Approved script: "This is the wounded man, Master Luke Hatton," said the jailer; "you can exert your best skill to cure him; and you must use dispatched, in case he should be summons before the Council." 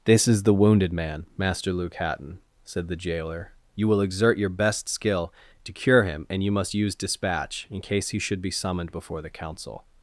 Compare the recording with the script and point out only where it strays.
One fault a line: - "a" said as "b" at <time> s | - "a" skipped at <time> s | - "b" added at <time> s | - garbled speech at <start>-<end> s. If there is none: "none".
- "can" said as "will" at 3.9 s
- "dispatched" said as "dispatch" at 6.9 s
- "summons" said as "summoned" at 8.5 s